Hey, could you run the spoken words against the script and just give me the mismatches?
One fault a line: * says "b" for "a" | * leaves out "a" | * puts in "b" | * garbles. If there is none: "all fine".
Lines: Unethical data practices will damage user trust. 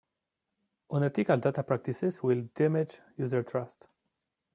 all fine